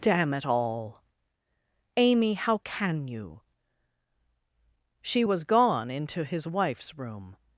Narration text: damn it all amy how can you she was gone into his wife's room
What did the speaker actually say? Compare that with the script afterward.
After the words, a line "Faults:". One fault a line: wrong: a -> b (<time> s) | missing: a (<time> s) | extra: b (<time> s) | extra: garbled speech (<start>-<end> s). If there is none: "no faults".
damn it all amy how can you she was gone into his wife's room
Faults:
no faults